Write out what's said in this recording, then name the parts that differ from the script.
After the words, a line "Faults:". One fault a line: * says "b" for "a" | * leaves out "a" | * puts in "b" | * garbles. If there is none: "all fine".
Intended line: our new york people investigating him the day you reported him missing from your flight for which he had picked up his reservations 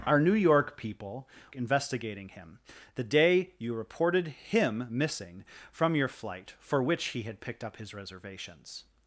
our new york people investigating him the day you reported him missing from your flight for which he had picked up his reservations
Faults:
all fine